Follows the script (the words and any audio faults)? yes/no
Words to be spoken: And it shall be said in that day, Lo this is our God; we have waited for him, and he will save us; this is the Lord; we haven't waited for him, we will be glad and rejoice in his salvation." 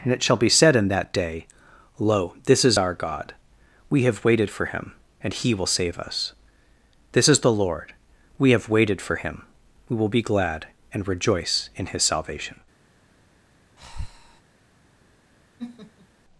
no